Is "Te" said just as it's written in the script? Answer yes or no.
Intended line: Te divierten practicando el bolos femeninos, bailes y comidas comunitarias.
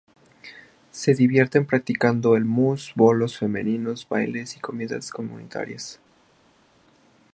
no